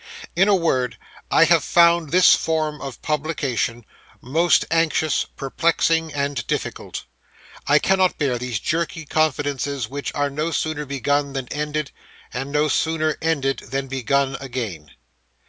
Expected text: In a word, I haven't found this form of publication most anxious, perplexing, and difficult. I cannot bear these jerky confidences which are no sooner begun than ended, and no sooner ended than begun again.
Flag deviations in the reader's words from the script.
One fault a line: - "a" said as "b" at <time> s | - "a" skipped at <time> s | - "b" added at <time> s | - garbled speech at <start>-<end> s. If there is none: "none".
- "haven't" said as "have" at 1.4 s